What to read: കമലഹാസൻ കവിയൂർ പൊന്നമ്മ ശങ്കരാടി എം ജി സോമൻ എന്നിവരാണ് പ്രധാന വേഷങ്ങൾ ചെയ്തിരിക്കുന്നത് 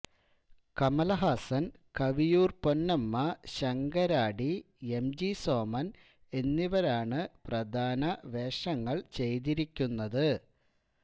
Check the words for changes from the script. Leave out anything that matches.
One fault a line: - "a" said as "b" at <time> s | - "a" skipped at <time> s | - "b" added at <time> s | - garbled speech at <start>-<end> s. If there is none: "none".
none